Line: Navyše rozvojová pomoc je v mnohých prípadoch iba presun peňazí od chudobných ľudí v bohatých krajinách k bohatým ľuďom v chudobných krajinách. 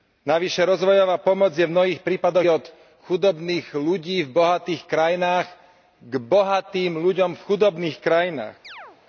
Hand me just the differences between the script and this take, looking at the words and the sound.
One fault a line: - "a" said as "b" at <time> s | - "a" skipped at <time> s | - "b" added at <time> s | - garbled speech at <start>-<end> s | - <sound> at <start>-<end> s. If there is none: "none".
- "iba presun peňazí" skipped at 2.5 s
- chirp at 8.6-9.0 s